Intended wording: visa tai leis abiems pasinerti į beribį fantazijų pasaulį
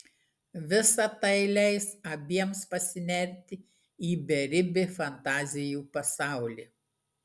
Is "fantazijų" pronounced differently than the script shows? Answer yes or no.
no